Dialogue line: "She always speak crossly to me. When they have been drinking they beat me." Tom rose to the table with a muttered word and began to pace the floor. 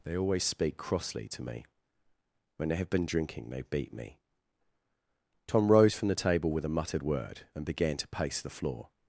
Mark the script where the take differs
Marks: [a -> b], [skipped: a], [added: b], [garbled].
["She -> They] always speak crossly to me. When they have been drinking they beat me." Tom rose [to -> from] the table with a muttered word and began to pace the floor.